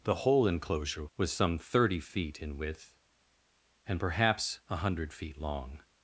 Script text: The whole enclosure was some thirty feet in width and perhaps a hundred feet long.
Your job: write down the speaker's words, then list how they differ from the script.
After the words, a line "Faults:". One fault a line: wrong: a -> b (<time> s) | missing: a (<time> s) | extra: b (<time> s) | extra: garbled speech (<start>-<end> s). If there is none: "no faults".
The whole enclosure was some thirty feet in width and perhaps a hundred feet long.
Faults:
no faults